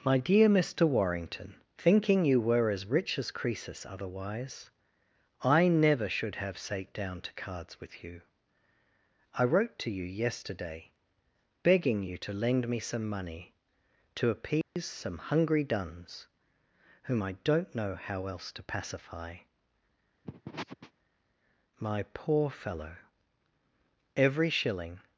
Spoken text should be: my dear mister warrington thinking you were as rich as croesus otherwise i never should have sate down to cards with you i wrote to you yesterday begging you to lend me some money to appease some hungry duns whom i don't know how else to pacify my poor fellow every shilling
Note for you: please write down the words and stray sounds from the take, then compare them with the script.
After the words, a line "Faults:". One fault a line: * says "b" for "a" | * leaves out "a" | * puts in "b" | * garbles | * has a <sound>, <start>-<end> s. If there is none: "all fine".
my dear mister warrington thinking you were as rich as croesus otherwise i never should have sate down to cards with you i wrote to you yesterday begging you to lend me some money to appease some hungry duns whom i don't know how else to pacify my poor fellow every shilling
Faults:
* has a dropout, 14.6-14.8 s
* has a sniff, 20.2-20.9 s